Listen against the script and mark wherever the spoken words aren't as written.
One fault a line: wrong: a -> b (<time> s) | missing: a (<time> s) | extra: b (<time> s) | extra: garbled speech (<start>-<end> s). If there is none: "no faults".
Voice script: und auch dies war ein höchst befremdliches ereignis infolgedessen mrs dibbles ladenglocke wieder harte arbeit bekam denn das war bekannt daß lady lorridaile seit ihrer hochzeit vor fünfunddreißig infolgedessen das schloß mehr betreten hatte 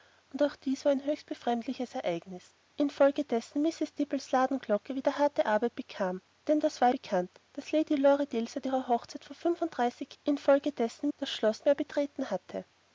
no faults